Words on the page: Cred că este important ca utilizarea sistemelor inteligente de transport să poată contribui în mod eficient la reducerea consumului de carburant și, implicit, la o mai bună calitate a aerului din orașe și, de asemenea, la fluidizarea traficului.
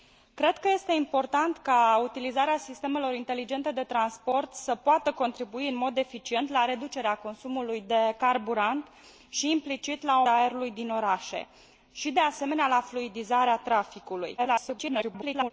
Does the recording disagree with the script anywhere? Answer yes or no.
yes